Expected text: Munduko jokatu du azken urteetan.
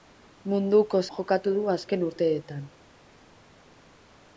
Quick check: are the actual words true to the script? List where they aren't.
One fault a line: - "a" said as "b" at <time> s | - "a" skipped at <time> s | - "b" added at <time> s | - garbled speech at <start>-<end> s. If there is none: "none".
none